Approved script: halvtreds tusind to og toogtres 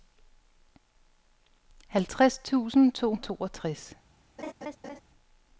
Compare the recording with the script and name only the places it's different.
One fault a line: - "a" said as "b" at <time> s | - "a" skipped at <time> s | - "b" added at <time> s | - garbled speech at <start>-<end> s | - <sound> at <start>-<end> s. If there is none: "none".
- laugh at 4.4-5.0 s